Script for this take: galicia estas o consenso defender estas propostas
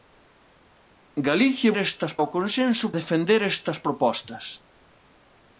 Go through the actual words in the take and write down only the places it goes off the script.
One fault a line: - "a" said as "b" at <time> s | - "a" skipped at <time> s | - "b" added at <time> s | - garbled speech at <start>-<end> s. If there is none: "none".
none